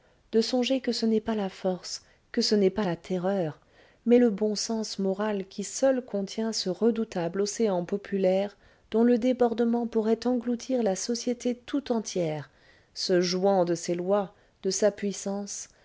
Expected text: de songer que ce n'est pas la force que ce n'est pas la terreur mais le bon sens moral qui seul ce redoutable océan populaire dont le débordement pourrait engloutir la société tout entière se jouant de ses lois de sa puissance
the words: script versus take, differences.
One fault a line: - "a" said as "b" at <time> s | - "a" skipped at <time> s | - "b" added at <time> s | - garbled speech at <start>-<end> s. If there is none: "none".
- "contient" added at 6.0 s